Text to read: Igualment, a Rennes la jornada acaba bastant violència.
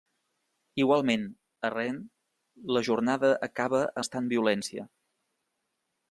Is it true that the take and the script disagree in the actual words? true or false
false